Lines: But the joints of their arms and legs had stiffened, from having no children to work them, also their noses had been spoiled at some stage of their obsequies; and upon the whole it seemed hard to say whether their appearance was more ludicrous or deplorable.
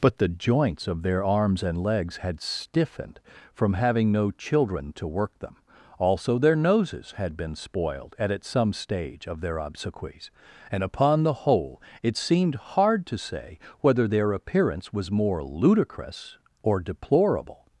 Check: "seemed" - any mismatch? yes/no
no